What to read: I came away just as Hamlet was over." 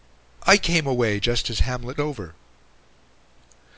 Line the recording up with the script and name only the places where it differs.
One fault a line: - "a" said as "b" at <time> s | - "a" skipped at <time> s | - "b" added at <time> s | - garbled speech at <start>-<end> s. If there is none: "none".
- "was" skipped at 2.0 s